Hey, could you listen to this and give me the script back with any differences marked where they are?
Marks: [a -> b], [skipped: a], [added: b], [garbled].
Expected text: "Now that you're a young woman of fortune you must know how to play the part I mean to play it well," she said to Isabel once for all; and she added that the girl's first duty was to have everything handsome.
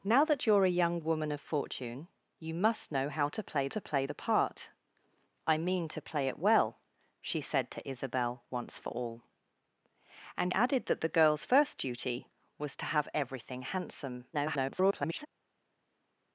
"Now that you're a young woman of fortune you must know how to play [added: to play] the part I mean to play it well," she said to Isabel once for all; and [skipped: she] added that the girl's first duty was to have everything handsome. [garbled]